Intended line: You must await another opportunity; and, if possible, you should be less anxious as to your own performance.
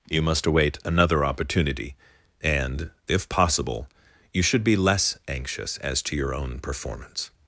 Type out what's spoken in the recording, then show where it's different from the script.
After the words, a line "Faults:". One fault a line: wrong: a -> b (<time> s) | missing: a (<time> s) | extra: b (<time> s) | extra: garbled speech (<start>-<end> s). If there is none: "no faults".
You must await another opportunity; and, if possible, you should be less anxious as to your own performance.
Faults:
no faults